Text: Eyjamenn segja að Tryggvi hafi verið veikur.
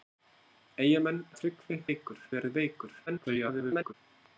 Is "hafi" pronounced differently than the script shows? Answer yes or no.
yes